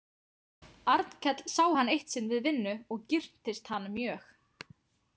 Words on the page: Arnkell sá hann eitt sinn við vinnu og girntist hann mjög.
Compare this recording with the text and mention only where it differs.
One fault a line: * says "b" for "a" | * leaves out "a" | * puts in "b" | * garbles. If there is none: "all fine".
all fine